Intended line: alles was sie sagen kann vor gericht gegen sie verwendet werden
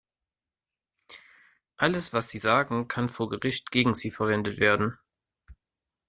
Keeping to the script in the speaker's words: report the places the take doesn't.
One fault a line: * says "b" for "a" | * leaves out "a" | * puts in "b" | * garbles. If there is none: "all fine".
all fine